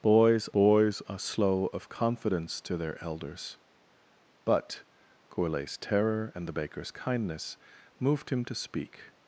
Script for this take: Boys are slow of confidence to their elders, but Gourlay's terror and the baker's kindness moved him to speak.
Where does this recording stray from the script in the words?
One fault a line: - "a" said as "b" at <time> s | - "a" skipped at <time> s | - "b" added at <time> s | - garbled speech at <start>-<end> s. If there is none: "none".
- "boys" added at 0.5 s